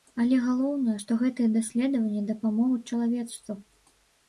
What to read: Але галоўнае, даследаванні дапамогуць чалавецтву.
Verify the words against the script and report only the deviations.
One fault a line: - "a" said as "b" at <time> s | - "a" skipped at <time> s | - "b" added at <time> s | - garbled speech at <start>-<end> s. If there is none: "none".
- "што гэтыя" added at 1.0 s